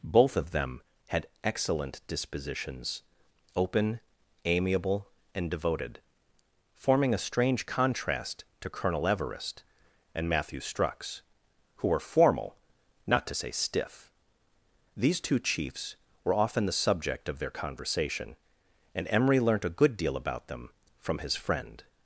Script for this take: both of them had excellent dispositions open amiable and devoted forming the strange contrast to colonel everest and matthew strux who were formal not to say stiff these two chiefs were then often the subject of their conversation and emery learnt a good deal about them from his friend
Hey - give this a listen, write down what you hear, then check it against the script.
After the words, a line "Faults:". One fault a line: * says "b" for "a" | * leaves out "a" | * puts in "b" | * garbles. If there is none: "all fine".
both of them had excellent dispositions open amiable and devoted forming a strange contrast to colonel everest and matthew strux who were formal not to say stiff these two chiefs were often the subject of their conversation and emery learnt a good deal about them from his friend
Faults:
* says "a" for "the"
* leaves out "then"